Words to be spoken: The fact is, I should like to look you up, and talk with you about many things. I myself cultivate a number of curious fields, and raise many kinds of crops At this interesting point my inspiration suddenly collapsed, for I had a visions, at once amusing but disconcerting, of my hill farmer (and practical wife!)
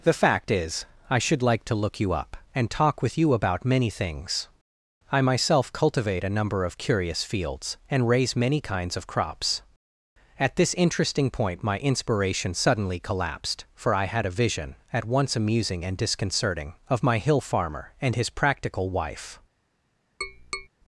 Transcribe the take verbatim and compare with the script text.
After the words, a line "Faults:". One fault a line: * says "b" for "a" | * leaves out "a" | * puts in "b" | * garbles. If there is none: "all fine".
The fact is, I should like to look you up, and talk with you about many things. I myself cultivate a number of curious fields, and raise many kinds of crops At this interesting point my inspiration suddenly collapsed, for I had a vision, at once amusing and disconcerting, of my hill farmer (and his practical wife!)
Faults:
* says "vision" for "visions"
* says "and" for "but"
* puts in "his"